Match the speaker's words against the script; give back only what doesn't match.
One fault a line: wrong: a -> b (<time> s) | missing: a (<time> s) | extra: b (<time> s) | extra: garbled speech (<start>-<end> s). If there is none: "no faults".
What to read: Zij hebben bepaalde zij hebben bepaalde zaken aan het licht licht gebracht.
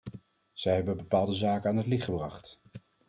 missing: zij hebben bepaalde (1.3 s)
missing: licht (2.0 s)